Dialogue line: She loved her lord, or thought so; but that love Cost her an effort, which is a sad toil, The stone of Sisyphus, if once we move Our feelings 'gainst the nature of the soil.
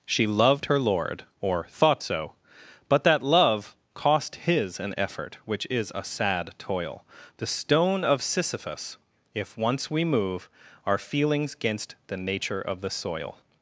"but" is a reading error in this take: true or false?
false